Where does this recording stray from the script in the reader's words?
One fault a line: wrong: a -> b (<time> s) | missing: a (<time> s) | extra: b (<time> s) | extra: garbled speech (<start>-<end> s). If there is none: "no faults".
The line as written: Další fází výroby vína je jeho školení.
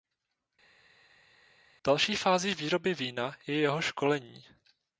no faults